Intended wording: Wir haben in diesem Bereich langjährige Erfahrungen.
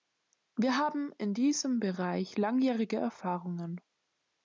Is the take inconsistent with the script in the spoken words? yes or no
no